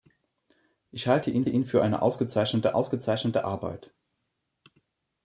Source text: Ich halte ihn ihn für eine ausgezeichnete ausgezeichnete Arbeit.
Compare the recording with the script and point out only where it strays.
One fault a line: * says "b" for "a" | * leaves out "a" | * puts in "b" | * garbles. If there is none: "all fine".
all fine